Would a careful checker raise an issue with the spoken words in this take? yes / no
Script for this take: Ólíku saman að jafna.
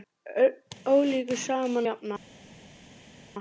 yes